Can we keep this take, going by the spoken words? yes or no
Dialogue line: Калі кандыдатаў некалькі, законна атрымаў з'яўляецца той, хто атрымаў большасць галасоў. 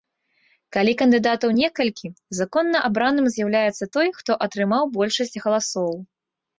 no